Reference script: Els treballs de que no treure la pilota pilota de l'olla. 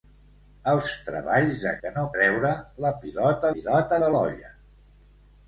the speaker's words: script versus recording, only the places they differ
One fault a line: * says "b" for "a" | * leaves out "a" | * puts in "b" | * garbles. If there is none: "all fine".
all fine